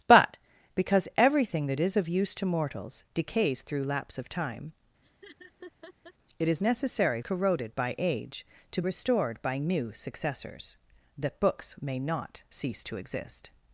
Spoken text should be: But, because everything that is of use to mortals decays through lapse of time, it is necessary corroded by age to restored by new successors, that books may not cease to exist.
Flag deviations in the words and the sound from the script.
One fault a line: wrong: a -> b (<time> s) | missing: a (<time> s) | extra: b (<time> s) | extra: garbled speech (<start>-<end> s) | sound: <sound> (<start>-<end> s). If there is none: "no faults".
sound: laugh (5.0-6.1 s)